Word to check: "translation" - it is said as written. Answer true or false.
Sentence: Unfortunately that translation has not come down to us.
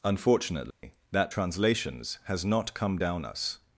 false